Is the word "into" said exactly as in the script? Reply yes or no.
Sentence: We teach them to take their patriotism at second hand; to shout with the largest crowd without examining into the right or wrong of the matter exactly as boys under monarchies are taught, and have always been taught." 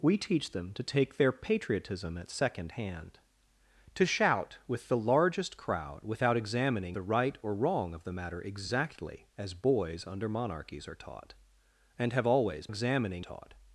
no